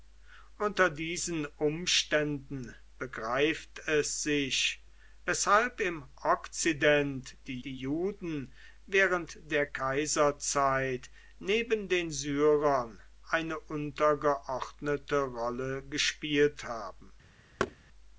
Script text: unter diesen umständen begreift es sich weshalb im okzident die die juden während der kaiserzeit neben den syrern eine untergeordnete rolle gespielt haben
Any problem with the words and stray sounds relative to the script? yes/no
yes